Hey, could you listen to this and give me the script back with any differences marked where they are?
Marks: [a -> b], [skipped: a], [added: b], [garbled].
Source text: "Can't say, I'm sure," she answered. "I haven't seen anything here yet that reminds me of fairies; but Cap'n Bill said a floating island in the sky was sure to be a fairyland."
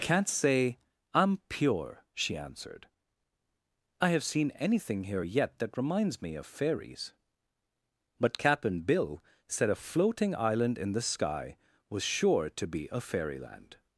"Can't say, I'm [sure," -> pure] she answered. "I [haven't -> have] seen anything here yet that reminds me of fairies; but Cap'n Bill said a floating island in the sky was sure to be a fairyland."